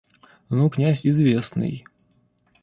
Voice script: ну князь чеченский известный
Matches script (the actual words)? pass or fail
fail